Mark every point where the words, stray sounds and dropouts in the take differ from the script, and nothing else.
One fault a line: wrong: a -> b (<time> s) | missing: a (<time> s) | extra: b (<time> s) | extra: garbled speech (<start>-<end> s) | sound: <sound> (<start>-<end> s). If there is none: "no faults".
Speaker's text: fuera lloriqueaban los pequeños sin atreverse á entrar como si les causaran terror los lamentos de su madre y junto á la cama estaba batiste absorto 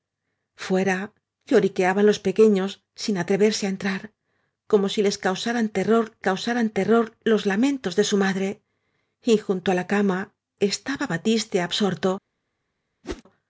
extra: causaran terror (6.3 s)
sound: whoosh (13.0-13.2 s)